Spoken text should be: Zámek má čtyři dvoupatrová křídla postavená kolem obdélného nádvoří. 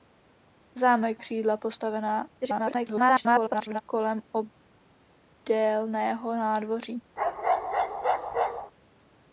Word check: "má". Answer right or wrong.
wrong